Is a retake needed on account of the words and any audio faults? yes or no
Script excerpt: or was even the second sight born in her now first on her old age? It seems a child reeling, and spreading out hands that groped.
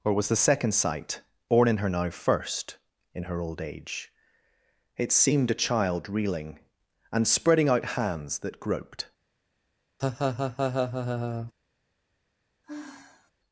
yes